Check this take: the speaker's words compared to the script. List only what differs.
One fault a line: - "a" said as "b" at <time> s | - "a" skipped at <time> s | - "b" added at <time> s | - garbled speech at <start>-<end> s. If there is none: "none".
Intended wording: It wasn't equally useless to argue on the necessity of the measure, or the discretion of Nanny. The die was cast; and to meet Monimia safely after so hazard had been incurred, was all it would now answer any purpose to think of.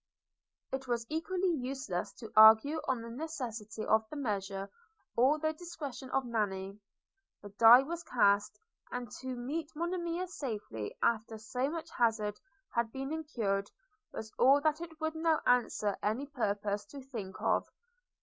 - "wasn't" said as "was" at 0.9 s
- "much" added at 11.7 s
- "that" added at 14.6 s